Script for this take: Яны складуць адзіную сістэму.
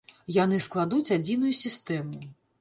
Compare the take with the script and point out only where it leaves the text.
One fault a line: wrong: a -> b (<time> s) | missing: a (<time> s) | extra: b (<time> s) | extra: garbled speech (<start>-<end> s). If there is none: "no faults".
no faults